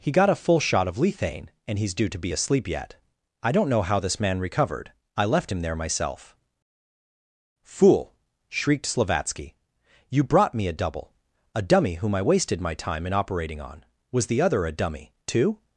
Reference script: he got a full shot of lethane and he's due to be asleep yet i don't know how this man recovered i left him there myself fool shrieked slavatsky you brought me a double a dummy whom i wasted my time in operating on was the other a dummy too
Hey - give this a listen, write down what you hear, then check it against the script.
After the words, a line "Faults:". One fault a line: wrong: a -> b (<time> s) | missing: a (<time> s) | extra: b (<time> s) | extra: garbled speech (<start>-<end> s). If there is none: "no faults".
he got a full shot of lethane and he's due to be asleep yet i don't know how this man recovered i left him there myself fool shrieked slavatsky you brought me a double a dummy whom i wasted my time in operating on was the other a dummy too
Faults:
no faults